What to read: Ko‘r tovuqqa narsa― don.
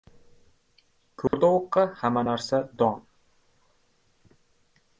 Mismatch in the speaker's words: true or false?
true